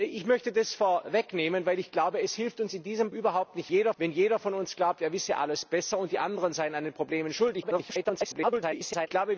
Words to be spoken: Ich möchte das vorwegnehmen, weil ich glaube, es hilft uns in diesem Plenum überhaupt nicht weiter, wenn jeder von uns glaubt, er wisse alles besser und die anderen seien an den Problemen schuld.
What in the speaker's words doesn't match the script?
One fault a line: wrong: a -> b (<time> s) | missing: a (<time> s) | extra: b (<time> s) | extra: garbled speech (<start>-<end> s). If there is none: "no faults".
missing: Plenum (3.1 s)
wrong: weiter -> jeder (3.7 s)
extra: garbled speech (7.6-9.1 s)